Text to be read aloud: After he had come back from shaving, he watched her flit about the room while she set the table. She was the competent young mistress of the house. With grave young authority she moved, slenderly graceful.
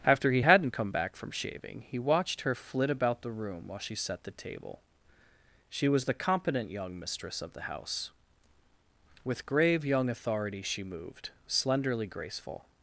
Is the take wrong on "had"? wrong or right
wrong